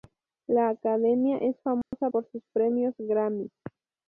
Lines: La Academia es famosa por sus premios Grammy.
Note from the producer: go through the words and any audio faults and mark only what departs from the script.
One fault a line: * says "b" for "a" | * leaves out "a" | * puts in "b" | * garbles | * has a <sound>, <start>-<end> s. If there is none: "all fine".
* has a dropout, 1.8-1.9 s